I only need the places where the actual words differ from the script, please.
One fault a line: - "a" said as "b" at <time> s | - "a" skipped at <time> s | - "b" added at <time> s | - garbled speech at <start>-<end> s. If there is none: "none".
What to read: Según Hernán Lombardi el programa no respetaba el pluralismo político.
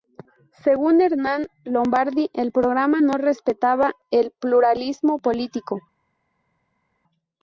none